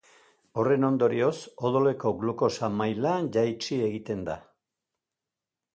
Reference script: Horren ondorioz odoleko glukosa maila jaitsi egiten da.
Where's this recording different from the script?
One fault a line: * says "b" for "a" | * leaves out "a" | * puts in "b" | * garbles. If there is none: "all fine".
all fine